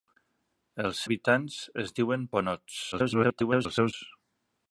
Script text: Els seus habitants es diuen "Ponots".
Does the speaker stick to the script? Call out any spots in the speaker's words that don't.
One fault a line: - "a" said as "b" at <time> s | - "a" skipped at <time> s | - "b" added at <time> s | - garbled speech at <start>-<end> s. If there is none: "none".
- "seus" skipped at 1.0 s
- garbled speech at 2.9-3.9 s